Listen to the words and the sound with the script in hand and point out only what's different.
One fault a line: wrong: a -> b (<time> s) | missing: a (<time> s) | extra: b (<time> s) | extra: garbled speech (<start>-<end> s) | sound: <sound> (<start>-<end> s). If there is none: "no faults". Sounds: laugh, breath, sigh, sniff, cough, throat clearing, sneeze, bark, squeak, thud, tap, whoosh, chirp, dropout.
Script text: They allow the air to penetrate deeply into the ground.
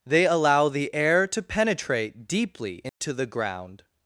sound: dropout (2.9-3.0 s)